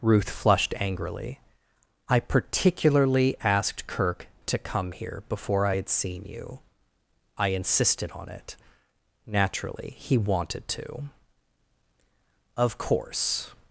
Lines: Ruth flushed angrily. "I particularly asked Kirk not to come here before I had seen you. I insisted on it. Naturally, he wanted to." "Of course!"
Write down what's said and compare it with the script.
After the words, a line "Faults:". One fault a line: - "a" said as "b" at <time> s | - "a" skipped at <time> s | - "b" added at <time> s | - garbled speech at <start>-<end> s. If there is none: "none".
Ruth flushed angrily. "I particularly asked Kirk to come here before I had seen you. I insisted on it. Naturally, he wanted to." "Of course!"
Faults:
- "not" skipped at 4.3 s